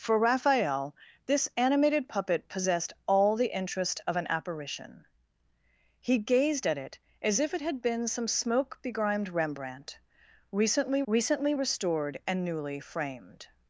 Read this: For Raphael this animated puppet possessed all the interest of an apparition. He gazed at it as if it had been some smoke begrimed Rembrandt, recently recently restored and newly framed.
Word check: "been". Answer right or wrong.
right